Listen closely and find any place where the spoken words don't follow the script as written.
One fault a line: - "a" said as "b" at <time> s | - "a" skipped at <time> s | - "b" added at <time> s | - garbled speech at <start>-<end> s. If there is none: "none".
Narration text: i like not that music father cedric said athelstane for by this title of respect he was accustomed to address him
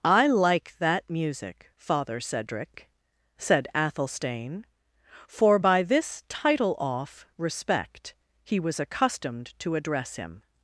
- "not" skipped at 0.8 s
- "of" said as "off" at 6.8 s